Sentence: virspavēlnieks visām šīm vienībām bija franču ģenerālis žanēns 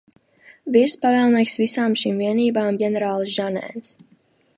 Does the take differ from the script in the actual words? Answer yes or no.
yes